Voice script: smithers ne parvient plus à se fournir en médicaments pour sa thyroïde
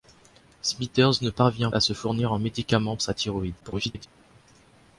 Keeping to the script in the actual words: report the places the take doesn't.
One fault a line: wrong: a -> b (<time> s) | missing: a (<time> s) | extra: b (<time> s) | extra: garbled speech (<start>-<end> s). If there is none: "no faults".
missing: plus (1.7 s)
missing: pour (3.0 s)
extra: garbled speech (3.6-4.1 s)